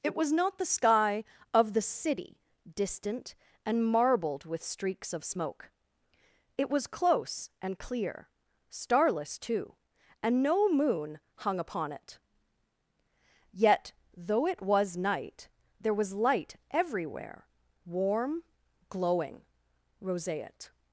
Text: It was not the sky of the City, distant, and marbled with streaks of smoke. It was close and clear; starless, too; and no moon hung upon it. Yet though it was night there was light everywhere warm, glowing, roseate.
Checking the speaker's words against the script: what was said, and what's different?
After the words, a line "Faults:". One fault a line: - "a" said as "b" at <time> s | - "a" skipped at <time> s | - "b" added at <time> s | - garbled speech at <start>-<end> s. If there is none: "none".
It was not the sky of the City, distant, and marbled with streaks of smoke. It was close and clear; starless, too; and no moon hung upon it. Yet though it was night there was light everywhere warm, glowing, roseate.
Faults:
none